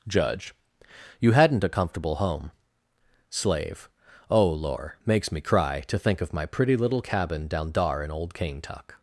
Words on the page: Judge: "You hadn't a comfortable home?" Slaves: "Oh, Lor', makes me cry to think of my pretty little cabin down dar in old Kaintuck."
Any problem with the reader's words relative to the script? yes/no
yes